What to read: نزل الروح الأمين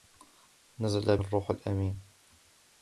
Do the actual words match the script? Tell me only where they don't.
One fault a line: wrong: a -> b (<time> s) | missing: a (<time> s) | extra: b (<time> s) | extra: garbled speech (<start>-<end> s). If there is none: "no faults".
no faults